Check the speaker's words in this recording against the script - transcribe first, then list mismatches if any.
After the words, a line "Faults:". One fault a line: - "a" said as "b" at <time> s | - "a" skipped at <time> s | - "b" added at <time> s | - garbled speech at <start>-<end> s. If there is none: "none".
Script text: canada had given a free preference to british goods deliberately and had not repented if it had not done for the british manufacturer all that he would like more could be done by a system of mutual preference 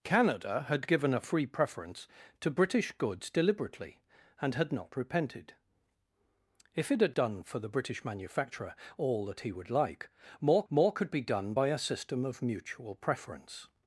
canada had given a free preference to british goods deliberately and had not repented if it had done for the british manufacturer all that he would like more more could be done by a system of mutual preference
Faults:
- "not" skipped at 7.2 s
- "more" added at 10.7 s